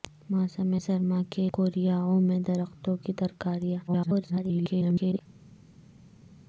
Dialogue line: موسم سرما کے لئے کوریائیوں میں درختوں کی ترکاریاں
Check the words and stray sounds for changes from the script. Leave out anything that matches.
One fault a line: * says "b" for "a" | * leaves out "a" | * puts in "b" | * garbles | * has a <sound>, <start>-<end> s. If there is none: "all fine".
* leaves out "لئے"
* garbles